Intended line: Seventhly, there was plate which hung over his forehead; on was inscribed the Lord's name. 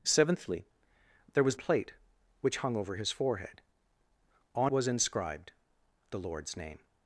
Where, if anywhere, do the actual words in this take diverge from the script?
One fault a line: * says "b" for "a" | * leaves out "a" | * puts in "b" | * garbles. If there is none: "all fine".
all fine